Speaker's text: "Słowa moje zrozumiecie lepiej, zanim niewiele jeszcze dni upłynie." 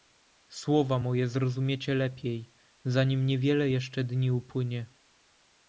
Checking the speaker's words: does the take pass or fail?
pass